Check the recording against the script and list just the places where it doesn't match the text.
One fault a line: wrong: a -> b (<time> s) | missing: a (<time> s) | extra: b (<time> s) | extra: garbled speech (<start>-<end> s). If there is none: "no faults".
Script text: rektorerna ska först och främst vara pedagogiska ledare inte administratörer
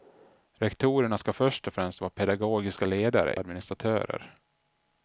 missing: inte (3.4 s)